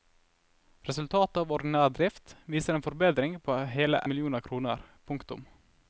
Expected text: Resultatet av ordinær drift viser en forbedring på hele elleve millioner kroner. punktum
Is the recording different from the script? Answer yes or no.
yes